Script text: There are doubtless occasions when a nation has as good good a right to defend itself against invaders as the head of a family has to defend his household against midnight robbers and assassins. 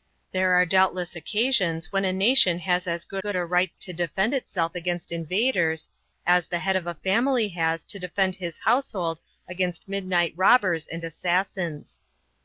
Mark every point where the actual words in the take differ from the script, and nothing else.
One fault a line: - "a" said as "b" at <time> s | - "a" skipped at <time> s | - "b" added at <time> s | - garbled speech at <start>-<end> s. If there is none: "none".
none